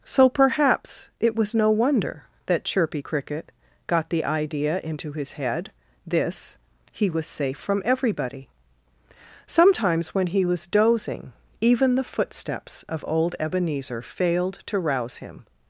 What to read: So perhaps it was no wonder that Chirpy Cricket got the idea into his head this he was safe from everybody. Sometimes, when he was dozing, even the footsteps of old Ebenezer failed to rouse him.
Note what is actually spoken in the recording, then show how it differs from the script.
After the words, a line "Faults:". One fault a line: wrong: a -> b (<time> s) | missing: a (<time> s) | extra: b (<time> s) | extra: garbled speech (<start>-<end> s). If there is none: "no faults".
So perhaps it was no wonder that Chirpy Cricket got the idea into his head this he was safe from everybody. Sometimes, when he was dozing, even the footsteps of old Ebenezer failed to rouse him.
Faults:
no faults